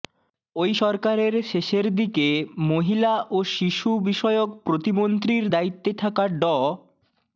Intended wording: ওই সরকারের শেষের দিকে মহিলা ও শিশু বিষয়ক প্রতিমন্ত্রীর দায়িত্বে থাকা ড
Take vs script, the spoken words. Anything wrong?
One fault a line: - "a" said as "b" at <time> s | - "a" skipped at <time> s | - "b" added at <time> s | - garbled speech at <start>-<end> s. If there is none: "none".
none